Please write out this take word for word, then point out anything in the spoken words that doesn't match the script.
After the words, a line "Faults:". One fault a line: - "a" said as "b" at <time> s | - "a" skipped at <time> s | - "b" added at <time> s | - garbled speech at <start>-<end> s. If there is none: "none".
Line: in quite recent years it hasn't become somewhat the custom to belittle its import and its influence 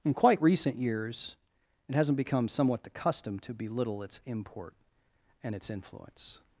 in quite recent years it hasn't become somewhat the custom to belittle its import and its influence
Faults:
none